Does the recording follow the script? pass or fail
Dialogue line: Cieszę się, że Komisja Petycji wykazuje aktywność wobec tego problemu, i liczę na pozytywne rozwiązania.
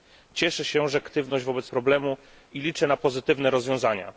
fail